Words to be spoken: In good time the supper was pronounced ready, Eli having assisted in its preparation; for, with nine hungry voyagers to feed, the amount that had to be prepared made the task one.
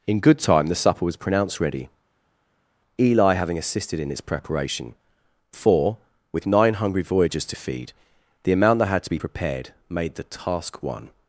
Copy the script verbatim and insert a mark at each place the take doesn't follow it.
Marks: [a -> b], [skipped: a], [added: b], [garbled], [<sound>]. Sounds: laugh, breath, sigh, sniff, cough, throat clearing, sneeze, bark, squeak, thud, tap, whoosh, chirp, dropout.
In good time the supper was pronounced ready, Eli having assisted in its preparation; for, with nine hungry voyagers to feed, the amount that had to be prepared made the task one.